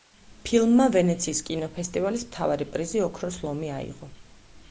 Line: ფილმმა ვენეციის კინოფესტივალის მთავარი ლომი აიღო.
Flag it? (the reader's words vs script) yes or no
yes